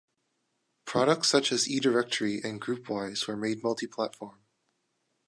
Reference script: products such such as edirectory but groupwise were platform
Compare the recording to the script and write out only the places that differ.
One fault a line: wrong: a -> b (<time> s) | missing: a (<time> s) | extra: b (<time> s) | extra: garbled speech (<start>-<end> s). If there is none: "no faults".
missing: such (1.5 s)
wrong: but -> and (2.4 s)
extra: made multi (3.3 s)